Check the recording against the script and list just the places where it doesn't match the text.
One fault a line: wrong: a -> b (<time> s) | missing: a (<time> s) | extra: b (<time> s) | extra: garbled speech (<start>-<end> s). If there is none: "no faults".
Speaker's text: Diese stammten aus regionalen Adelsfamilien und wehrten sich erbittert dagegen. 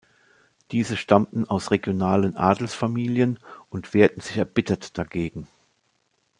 no faults